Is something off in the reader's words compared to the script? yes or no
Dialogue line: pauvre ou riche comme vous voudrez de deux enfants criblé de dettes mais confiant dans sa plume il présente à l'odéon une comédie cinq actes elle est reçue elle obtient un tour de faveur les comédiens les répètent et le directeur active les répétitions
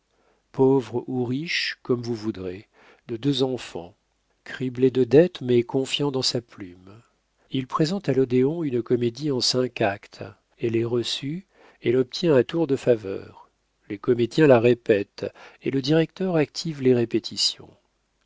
yes